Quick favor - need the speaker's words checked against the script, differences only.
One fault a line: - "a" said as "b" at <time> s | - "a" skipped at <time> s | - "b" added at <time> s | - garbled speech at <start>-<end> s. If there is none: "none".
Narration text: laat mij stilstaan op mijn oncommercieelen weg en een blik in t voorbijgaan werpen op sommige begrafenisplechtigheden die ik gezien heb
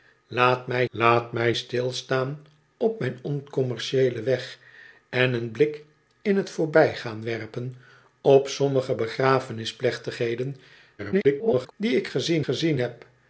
- "laat mij" added at 0.9 s
- garbled speech at 11.0-11.7 s
- "gezien" added at 12.4 s